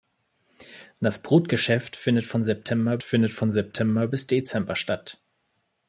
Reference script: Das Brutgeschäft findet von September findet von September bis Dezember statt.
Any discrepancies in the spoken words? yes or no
no